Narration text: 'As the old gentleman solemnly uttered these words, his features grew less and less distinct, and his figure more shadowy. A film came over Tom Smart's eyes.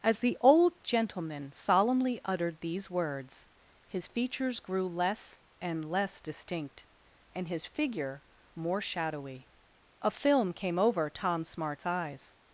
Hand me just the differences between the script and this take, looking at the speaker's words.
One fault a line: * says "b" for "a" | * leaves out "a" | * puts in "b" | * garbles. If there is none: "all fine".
all fine